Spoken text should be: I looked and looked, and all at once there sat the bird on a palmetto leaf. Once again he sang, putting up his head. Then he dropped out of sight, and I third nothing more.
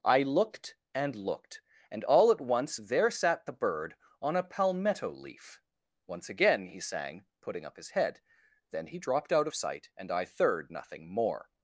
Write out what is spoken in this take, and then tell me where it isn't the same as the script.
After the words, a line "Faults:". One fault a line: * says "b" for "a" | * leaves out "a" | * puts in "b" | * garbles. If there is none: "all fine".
I looked and looked, and all at once there sat the bird on a palmetto leaf. Once again he sang, putting up his head. Then he dropped out of sight, and I third nothing more.
Faults:
all fine